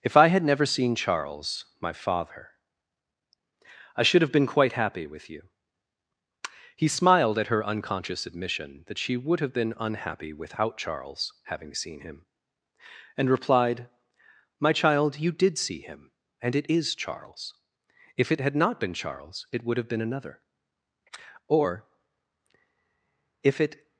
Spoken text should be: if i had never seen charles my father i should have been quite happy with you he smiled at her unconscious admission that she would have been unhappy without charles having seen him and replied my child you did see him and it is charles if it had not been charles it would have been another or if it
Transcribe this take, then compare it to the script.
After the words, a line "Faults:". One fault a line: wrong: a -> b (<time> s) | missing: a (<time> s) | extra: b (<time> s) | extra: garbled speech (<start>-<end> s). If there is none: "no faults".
if i had never seen charles my father i should have been quite happy with you he smiled at her unconscious admission that she would have been unhappy without charles having seen him and replied my child you did see him and it is charles if it had not been charles it would have been another or if it
Faults:
no faults